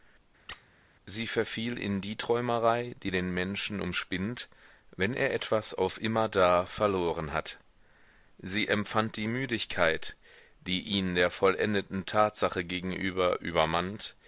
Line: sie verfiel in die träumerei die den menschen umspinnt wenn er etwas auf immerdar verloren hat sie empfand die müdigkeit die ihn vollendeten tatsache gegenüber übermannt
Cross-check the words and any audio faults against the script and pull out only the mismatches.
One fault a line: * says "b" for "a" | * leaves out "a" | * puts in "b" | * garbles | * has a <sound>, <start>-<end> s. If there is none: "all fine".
* has a squeak, 0.5-0.7 s
* puts in "der"